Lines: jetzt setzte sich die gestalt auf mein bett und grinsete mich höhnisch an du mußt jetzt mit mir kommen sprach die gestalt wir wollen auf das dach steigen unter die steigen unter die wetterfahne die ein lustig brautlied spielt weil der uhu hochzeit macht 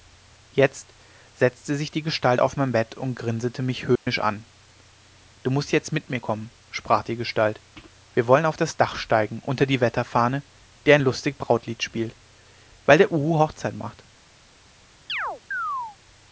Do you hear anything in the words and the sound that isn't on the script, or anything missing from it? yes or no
yes